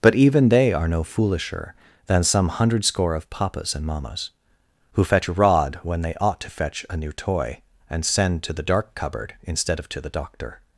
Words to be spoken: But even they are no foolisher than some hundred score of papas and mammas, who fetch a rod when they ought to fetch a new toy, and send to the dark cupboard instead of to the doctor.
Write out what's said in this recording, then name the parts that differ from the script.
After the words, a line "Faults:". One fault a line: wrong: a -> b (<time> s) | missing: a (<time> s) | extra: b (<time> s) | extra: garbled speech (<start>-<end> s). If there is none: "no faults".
But even they are no foolisher than some hundred score of papas and mammas, who fetch a rod when they ought to fetch a new toy, and send to the dark cupboard instead of to the doctor.
Faults:
no faults